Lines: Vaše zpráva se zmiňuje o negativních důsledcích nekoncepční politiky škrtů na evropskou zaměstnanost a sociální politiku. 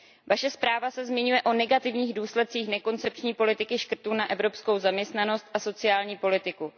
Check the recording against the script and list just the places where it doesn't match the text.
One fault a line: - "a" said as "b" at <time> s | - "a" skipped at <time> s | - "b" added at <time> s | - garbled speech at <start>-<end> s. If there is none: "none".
none